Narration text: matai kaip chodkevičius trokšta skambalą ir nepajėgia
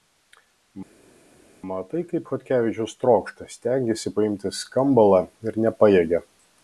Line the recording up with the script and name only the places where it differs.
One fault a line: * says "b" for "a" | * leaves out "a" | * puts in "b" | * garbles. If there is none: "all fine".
* puts in "stengiasi paimti"